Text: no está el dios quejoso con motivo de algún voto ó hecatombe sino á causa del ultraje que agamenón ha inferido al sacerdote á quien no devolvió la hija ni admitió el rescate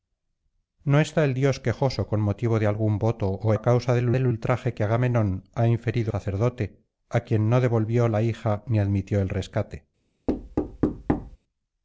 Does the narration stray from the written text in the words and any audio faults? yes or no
yes